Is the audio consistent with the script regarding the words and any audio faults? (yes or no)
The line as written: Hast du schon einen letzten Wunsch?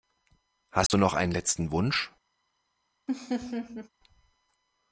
no